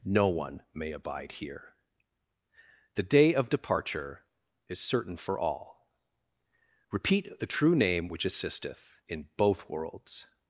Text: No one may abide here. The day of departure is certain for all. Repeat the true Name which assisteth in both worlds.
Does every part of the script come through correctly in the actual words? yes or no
yes